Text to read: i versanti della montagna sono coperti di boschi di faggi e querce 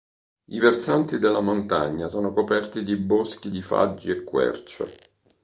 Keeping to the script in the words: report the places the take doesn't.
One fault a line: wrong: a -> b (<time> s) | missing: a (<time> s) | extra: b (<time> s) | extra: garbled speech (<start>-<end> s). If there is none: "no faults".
no faults